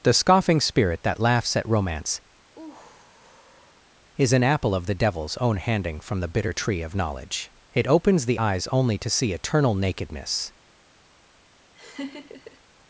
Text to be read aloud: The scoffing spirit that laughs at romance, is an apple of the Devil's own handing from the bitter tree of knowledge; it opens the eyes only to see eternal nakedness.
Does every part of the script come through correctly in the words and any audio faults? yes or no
no